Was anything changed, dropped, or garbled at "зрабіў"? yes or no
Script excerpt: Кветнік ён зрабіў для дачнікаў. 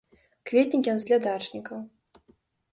yes